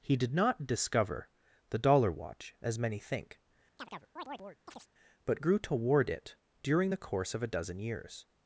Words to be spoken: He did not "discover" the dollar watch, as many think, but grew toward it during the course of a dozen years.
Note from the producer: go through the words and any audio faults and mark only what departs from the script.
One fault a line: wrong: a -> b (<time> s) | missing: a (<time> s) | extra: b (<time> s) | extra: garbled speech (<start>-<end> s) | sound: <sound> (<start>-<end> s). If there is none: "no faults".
sound: chirp (3.8-4.9 s)